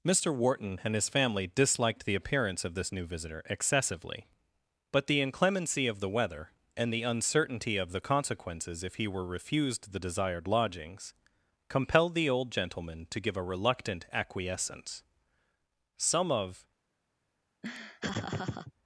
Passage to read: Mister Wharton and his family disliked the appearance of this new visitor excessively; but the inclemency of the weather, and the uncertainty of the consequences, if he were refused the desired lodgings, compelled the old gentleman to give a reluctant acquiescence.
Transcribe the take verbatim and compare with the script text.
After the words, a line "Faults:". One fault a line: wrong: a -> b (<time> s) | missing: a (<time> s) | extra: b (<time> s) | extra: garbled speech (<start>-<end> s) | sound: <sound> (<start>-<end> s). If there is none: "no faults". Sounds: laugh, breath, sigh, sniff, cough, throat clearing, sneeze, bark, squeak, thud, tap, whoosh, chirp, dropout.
Mister Wharton and his family disliked the appearance of this new visitor excessively; but the inclemency of the weather, and the uncertainty of the consequences, if he were refused the desired lodgings, compelled the old gentleman to give a reluctant acquiescence. Some of
Faults:
extra: Some of (16.0 s)
sound: laugh (17.6-18.7 s)